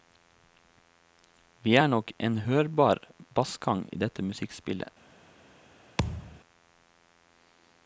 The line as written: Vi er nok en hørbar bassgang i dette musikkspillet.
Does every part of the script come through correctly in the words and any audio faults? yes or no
no